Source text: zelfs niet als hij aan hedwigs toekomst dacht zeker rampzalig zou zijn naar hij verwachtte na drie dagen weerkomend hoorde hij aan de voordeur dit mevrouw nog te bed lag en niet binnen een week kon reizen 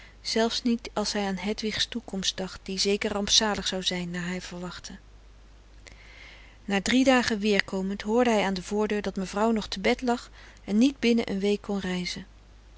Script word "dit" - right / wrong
wrong